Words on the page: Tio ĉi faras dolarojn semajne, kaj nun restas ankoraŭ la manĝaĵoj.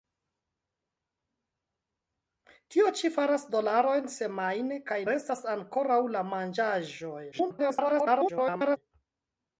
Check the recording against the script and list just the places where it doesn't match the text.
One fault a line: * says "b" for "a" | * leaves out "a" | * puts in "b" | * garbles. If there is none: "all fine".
* leaves out "nun"
* garbles